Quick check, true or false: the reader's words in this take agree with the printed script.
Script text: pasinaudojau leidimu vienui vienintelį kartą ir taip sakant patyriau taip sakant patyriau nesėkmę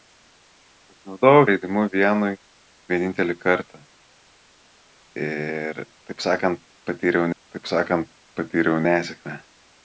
true